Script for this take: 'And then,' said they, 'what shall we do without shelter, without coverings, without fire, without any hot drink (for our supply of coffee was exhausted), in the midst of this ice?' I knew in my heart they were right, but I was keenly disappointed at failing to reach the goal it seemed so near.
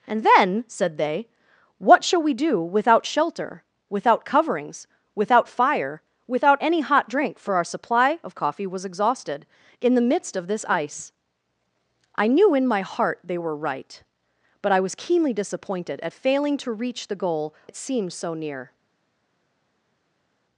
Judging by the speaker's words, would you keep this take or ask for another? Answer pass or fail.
pass